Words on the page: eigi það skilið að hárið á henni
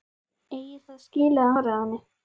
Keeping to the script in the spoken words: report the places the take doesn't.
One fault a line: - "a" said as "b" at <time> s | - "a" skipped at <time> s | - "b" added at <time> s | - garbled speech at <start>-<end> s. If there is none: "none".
none